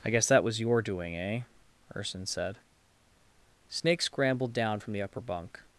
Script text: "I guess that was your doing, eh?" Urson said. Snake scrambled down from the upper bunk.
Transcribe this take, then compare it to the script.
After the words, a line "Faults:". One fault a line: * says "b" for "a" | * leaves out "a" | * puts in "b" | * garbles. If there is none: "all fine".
"I guess that was your doing, eh?" Urson said. Snake scrambled down from the upper bunk.
Faults:
all fine